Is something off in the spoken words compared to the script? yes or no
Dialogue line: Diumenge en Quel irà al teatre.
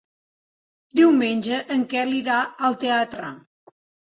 no